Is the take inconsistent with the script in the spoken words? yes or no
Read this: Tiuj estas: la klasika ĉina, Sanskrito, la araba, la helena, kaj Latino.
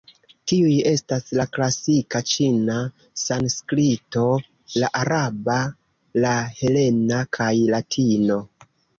no